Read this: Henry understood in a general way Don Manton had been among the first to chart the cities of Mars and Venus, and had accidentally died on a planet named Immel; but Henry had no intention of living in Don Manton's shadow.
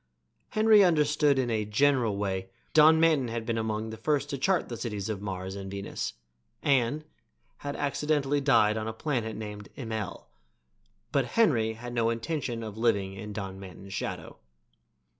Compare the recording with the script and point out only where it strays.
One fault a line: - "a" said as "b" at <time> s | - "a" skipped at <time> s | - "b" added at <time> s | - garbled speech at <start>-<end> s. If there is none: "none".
none